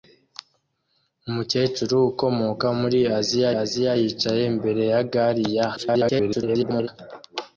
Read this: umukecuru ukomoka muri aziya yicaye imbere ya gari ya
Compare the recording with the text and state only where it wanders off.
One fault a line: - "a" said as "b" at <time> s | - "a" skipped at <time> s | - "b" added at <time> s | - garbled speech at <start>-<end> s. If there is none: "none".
- "aziya" added at 3.6 s
- garbled speech at 5.8-6.9 s